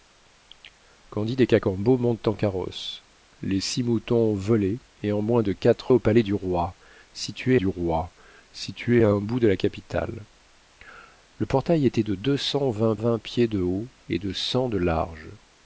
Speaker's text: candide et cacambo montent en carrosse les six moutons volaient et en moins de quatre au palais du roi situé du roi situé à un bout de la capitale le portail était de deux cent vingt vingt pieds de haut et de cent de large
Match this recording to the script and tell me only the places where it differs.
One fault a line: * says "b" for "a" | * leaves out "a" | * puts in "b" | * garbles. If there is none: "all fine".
all fine